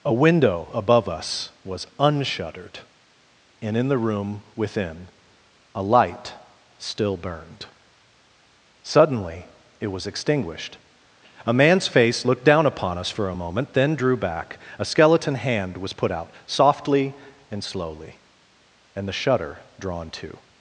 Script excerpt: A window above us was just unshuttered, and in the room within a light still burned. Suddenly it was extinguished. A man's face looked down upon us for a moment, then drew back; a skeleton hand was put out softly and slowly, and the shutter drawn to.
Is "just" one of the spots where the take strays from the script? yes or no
yes